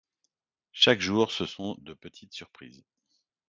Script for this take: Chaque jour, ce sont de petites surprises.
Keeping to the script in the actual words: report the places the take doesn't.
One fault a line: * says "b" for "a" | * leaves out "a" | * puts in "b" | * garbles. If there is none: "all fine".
all fine